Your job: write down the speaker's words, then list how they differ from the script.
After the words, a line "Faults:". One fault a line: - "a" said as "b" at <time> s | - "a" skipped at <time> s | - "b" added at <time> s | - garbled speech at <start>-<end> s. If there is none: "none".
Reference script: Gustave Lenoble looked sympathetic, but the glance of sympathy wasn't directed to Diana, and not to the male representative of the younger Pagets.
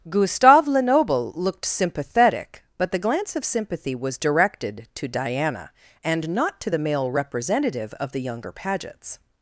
Gustave Lenoble looked sympathetic, but the glance of sympathy was directed to Diana, and not to the male representative of the younger Pagets.
Faults:
- "wasn't" said as "was" at 3.9 s